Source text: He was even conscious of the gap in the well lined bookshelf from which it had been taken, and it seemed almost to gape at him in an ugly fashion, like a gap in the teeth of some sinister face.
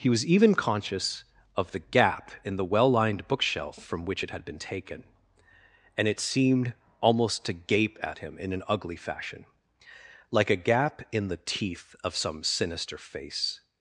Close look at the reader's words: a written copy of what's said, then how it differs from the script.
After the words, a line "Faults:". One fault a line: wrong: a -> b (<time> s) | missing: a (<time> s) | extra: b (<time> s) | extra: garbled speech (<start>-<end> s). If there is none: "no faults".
He was even conscious of the gap in the well lined bookshelf from which it had been taken, and it seemed almost to gape at him in an ugly fashion, like a gap in the teeth of some sinister face.
Faults:
no faults